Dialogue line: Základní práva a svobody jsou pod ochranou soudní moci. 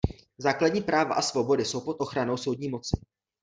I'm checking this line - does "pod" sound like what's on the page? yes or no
yes